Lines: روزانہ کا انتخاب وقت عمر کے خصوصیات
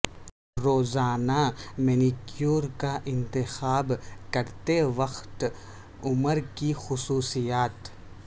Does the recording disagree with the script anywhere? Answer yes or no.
yes